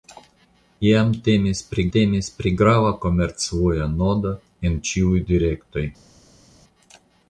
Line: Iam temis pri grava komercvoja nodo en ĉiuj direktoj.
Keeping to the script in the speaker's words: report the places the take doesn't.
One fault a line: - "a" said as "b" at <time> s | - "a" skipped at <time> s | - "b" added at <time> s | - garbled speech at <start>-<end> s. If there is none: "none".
- "temis pri" added at 2.0 s